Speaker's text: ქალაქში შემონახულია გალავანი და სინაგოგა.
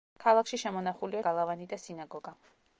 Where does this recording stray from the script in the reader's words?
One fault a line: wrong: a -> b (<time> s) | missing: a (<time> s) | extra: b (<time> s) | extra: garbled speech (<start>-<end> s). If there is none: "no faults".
no faults